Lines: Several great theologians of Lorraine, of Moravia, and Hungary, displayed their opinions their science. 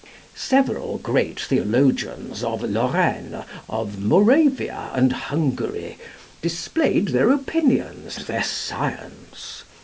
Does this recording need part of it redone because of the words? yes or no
no